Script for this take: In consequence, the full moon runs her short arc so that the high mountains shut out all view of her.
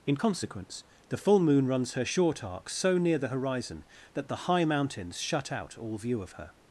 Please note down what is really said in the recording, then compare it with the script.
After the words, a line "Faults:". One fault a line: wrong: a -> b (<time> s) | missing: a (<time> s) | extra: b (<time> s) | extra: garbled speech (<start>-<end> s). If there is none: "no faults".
In consequence, the full moon runs her short arc so near the horizon that the high mountains shut out all view of her.
Faults:
extra: near the horizon (3.0 s)